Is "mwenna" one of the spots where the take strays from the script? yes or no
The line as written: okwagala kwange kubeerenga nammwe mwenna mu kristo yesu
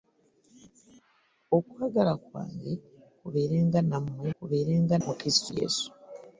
yes